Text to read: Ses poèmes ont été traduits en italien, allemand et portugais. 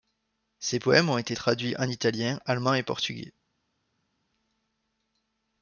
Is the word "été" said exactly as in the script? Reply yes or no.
yes